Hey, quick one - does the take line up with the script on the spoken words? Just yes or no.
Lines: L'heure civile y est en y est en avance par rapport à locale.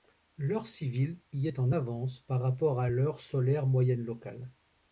no